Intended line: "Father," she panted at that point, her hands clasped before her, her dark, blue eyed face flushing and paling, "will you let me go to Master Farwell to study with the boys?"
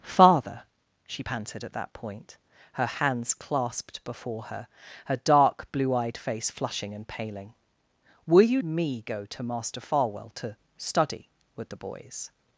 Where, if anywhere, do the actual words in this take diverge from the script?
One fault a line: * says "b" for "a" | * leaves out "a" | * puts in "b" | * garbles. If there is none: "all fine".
* leaves out "let"